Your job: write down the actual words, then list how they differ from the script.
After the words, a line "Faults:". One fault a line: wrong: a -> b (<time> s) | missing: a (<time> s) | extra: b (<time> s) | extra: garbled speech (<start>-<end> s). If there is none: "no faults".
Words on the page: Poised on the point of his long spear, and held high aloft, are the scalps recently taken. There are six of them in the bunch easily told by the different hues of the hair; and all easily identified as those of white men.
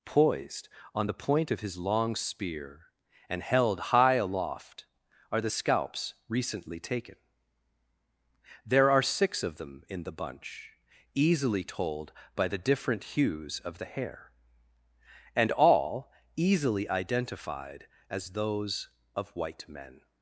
Poised on the point of his long spear, and held high aloft, are the scalps recently taken. There are six of them in the bunch easily told by the different hues of the hair; and all easily identified as those of white men.
Faults:
no faults